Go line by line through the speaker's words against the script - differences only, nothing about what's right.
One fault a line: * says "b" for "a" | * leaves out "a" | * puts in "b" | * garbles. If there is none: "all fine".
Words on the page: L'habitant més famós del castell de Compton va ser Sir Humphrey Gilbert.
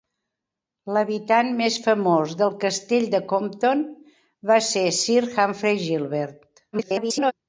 * garbles